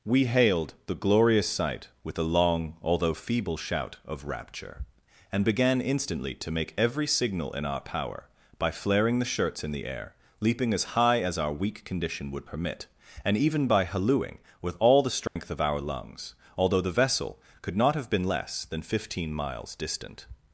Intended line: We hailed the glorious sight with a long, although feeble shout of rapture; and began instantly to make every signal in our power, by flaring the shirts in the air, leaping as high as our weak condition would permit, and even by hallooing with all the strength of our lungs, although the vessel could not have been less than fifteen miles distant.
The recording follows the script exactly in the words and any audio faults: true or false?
false